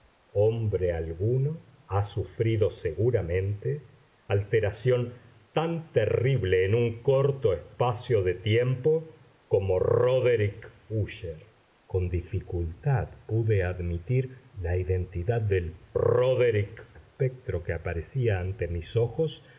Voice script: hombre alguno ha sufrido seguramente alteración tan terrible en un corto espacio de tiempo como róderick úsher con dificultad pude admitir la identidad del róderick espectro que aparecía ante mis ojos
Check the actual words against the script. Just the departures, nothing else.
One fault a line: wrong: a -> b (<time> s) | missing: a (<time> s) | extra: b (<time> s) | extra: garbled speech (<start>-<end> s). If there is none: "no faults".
no faults